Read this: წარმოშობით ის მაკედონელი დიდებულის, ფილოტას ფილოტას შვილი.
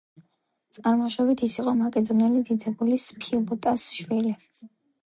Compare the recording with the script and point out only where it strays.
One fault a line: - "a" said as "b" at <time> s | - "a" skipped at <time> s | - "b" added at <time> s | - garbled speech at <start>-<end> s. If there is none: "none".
- "იყო" added at 1.6 s
- "ფილოტას" skipped at 3.9 s